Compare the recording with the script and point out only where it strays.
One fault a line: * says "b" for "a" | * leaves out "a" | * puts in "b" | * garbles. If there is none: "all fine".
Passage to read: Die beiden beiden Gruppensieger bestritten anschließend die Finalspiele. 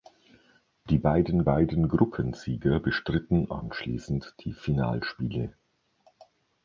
all fine